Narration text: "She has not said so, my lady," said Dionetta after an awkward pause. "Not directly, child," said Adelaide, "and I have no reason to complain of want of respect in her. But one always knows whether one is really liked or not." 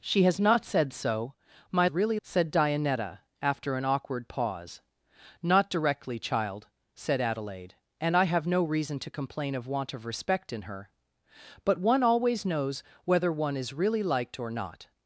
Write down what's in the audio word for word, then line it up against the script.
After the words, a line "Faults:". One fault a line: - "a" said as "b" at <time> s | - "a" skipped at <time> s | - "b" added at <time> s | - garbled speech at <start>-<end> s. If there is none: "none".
"She has not said so, my really," said Dionetta after an awkward pause. "Not directly, child," said Adelaide, "and I have no reason to complain of want of respect in her. But one always knows whether one is really liked or not."
Faults:
- "lady" said as "really" at 1.9 s